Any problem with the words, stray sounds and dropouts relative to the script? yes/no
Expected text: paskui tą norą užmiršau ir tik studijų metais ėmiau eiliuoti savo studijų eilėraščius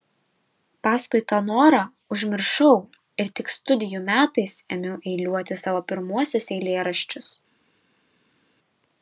yes